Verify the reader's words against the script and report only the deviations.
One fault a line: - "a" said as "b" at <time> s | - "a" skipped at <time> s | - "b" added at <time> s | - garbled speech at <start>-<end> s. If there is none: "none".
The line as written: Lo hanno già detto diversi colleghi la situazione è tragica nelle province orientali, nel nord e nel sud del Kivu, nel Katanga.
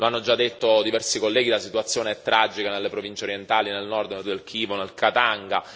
- "sud" skipped at 4.2 s